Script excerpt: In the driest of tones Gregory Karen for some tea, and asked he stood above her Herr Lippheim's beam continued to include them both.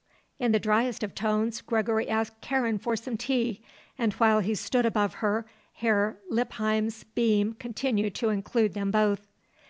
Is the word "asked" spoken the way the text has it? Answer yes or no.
no